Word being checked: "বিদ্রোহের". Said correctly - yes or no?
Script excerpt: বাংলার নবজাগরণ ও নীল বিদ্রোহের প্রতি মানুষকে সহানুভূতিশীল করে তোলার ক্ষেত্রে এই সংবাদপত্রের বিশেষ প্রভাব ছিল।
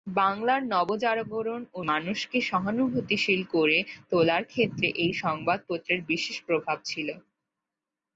no